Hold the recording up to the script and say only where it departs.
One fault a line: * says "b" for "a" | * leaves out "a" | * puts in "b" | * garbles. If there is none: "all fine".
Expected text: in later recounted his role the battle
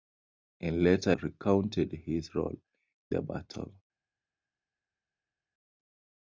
all fine